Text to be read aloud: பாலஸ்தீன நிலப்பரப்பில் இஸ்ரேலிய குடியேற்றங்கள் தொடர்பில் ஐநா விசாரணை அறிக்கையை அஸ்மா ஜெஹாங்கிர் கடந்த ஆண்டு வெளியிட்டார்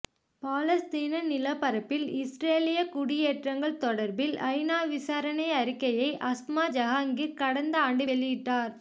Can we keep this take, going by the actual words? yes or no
yes